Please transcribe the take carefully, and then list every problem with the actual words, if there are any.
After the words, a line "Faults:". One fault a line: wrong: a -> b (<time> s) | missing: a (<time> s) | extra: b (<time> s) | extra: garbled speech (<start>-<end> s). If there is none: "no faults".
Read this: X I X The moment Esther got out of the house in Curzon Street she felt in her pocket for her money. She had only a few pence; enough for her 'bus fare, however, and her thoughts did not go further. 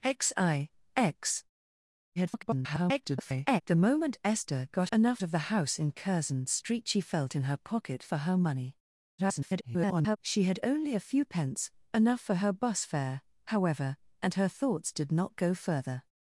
X I X [garbled] The moment Esther got enough of the house in Curzon Street she felt in her pocket for her money. [garbled] She had only a few pence; enough for her 'bus fare, however, and her thoughts did not go further.
Faults:
extra: garbled speech (2.2-3.6 s)
wrong: out -> enough (4.9 s)
extra: garbled speech (9.2-10.2 s)